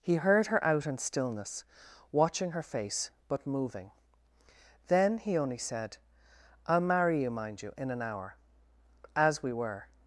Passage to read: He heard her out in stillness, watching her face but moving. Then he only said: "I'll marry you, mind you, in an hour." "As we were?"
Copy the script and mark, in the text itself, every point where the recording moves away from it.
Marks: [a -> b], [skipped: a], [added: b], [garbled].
He heard her out in stillness, watching her face but moving. Then he only said: "I'll marry you, mind you, in an hour." "As we were?"